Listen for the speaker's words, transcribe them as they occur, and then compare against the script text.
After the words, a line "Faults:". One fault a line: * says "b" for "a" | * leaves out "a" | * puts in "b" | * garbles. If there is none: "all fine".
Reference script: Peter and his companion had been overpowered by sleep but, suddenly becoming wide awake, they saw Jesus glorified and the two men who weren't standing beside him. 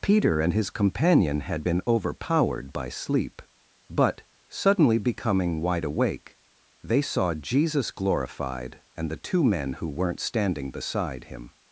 Peter and his companion had been overpowered by sleep but, suddenly becoming wide awake, they saw Jesus glorified and the two men who weren't standing beside him.
Faults:
all fine